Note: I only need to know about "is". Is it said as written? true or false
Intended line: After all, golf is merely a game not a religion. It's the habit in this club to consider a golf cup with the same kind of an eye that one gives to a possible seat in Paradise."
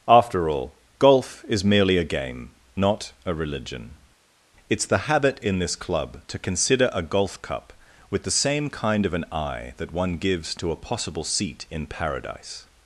true